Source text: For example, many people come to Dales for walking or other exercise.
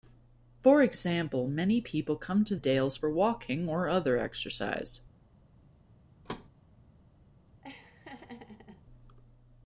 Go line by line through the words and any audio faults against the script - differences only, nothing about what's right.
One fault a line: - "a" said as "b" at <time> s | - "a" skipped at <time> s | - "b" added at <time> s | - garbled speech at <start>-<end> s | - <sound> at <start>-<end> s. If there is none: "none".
- thud at 6.2-6.5 s
- laugh at 7.6-8.8 s